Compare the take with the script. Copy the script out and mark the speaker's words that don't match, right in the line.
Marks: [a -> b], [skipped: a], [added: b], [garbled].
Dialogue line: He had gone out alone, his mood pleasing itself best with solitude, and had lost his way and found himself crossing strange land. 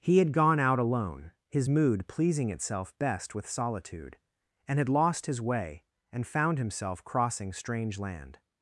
He had gone out alone, his mood pleasing itself best with solitude, and had lost his way and found himself crossing strange land.